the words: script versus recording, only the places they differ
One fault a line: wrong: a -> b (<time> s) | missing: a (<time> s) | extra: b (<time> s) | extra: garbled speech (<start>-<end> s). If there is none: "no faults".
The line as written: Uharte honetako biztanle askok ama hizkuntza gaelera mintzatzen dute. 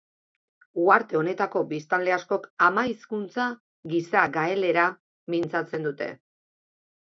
extra: gisa (3.9 s)